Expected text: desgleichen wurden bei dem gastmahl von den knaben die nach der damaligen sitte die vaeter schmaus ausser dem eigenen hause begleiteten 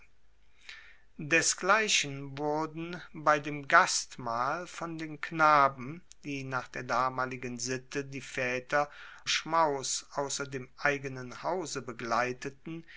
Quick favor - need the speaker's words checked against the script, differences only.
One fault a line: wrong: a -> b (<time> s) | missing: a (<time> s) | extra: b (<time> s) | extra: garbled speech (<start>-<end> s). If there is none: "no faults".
no faults